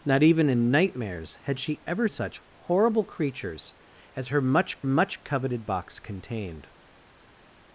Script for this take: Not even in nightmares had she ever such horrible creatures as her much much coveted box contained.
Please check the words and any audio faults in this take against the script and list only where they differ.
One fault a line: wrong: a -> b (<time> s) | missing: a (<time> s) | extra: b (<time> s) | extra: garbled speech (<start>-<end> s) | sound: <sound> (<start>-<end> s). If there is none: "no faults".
no faults